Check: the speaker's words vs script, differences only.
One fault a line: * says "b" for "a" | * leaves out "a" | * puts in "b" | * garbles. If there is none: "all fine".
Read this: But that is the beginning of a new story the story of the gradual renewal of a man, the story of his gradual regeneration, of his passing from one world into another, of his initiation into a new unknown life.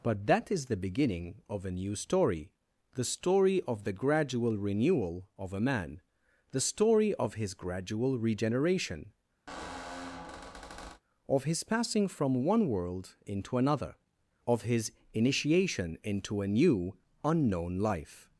all fine